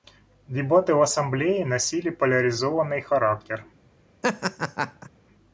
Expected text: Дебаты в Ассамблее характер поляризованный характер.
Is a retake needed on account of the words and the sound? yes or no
yes